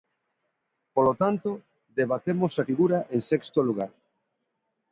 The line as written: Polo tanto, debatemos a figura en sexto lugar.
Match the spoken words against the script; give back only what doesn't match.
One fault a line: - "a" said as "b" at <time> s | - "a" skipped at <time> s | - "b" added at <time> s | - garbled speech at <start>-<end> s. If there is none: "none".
none